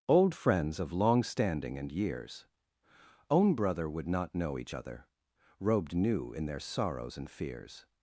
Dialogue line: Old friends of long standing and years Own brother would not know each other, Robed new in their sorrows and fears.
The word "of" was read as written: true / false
true